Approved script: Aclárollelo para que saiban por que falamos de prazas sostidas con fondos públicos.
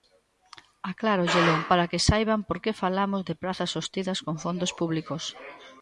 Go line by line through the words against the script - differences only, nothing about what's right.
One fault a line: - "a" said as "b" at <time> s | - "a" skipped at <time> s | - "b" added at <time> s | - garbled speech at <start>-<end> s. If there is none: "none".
none